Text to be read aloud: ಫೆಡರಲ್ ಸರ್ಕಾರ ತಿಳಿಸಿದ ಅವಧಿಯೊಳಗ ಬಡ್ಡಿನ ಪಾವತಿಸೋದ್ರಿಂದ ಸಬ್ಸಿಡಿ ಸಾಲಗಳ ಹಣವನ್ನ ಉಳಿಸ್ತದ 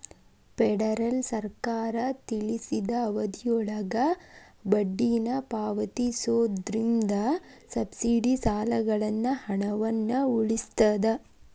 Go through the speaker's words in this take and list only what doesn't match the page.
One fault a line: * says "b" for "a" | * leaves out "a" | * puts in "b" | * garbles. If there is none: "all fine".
all fine